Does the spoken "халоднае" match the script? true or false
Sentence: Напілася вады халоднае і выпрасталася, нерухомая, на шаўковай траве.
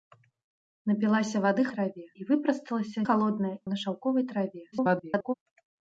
false